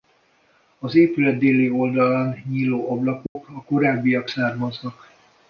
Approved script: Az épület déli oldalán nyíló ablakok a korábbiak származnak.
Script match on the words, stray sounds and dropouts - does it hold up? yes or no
no